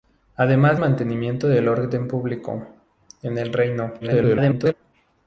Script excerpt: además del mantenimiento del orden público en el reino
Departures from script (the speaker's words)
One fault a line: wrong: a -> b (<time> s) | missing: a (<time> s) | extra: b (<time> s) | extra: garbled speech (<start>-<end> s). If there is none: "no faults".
missing: del (0.8 s)
extra: garbled speech (4.0-4.7 s)